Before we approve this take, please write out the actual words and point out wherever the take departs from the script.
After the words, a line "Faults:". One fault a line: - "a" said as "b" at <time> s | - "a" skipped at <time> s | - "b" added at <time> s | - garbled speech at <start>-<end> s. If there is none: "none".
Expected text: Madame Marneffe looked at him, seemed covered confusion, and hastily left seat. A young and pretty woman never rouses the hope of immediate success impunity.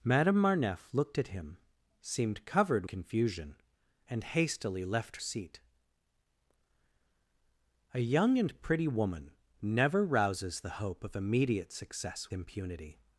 Madame Marneffe looked at him, seemed covered confusion, and hastily left seat. A young and pretty woman never rouses the hope of immediate success impunity.
Faults:
none